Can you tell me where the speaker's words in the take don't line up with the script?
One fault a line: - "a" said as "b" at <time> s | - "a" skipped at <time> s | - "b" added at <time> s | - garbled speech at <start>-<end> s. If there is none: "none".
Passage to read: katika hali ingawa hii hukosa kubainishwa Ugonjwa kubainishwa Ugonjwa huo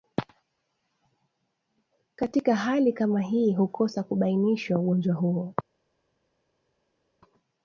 - "ingawa" said as "kama" at 2.9 s
- "kubainishwa Ugonjwa" skipped at 5.2 s